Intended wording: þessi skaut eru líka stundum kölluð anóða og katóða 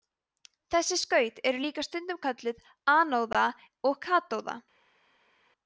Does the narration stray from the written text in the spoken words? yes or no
no